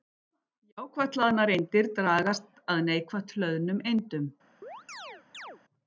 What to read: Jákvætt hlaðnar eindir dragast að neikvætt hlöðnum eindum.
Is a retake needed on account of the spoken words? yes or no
no